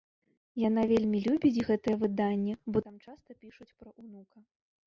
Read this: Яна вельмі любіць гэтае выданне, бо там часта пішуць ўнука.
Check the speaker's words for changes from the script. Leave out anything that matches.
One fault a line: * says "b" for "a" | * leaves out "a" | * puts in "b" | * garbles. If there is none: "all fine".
* puts in "пра"